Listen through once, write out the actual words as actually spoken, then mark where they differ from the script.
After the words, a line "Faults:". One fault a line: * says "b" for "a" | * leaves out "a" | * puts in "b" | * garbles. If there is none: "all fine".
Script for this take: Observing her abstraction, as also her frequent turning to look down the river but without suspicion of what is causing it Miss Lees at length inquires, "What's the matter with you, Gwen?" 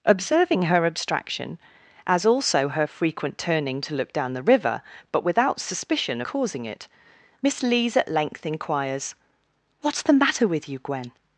Observing her abstraction, as also her frequent turning to look down the river but without suspicion causing it Miss Lees at length inquires, "What's the matter with you, Gwen?"
Faults:
* leaves out "of what is"